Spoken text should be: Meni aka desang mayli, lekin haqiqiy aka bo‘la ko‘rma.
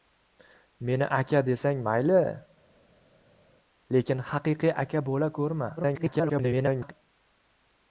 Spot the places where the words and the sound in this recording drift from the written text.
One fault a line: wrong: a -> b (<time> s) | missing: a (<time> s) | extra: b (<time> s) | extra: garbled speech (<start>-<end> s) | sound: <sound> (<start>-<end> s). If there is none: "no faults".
extra: garbled speech (5.8-6.9 s)